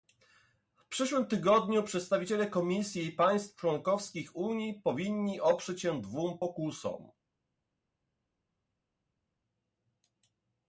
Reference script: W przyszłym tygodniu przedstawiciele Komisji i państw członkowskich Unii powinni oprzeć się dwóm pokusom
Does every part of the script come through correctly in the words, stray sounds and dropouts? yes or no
yes